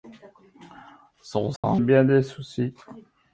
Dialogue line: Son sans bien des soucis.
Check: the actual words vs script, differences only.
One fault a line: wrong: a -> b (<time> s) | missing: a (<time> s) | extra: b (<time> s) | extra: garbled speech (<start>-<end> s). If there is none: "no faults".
no faults